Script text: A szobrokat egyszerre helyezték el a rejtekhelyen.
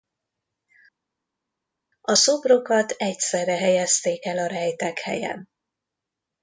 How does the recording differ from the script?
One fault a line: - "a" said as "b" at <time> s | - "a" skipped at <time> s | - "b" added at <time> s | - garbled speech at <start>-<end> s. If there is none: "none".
none